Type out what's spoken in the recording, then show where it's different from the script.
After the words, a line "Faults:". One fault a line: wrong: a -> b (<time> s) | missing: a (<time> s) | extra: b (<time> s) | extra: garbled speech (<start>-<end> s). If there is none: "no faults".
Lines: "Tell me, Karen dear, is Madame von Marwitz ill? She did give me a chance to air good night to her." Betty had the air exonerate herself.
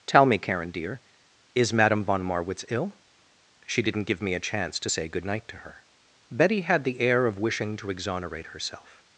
"Tell me, Karen dear, is Madame von Marwitz ill? She didn't give me a chance to say good night to her." Betty had the air of wishing to exonerate herself.
Faults:
wrong: did -> didn't (3.8 s)
wrong: air -> say (4.9 s)
extra: of wishing to (7.3 s)